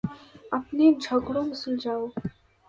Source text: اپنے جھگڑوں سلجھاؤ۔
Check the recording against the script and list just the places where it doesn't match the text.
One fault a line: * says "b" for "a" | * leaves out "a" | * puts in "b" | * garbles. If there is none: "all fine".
all fine